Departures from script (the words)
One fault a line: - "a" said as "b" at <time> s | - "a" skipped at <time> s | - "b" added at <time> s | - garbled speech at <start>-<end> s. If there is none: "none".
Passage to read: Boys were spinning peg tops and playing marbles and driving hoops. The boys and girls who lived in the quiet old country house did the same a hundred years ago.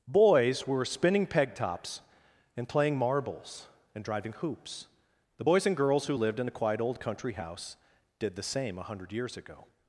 none